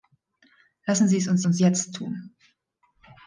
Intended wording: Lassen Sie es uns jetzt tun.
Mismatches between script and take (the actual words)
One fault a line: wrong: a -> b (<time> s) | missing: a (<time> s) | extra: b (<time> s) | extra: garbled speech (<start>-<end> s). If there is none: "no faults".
extra: uns (1.4 s)